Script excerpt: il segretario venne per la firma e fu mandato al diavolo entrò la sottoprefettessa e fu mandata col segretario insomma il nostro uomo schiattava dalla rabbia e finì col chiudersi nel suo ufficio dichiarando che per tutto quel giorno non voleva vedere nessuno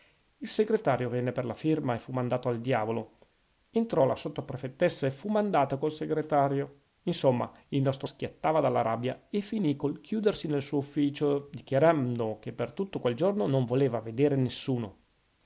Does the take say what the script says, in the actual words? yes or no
no